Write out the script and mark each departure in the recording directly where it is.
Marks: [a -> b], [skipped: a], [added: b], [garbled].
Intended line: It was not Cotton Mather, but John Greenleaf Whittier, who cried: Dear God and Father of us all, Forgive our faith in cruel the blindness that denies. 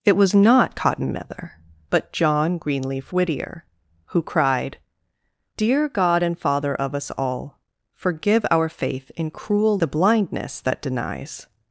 It was not Cotton Mather, but John Greenleaf Whittier, who cried: Dear God and Father of us all, Forgive our faith in cruel the blindness that denies.